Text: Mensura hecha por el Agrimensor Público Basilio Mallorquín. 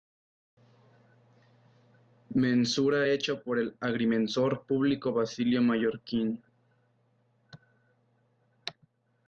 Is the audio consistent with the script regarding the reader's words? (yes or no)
yes